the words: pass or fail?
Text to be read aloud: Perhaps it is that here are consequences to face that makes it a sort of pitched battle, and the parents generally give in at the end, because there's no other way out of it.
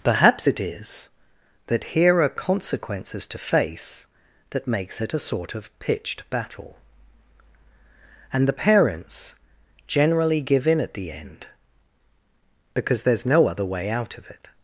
pass